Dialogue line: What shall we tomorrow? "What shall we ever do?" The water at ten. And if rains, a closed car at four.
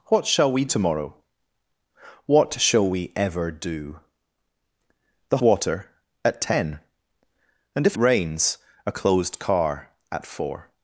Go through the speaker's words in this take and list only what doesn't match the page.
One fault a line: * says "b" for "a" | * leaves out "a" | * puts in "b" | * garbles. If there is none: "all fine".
all fine